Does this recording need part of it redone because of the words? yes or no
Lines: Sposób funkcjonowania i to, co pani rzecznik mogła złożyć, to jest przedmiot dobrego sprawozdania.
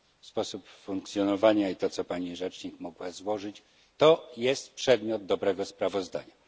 no